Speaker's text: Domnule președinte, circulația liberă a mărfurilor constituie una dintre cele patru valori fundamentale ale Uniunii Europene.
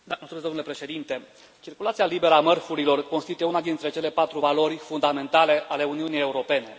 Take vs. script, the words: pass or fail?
pass